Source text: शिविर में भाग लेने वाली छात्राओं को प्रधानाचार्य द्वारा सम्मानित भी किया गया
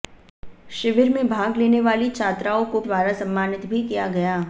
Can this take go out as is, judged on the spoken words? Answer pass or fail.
fail